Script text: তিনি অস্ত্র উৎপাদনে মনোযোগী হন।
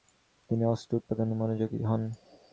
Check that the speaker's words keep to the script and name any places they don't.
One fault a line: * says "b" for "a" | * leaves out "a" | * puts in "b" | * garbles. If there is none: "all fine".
all fine